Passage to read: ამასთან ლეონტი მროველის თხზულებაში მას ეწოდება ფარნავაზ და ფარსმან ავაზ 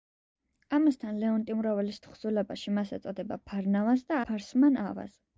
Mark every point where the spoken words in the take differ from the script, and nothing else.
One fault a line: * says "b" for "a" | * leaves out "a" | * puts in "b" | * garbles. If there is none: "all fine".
all fine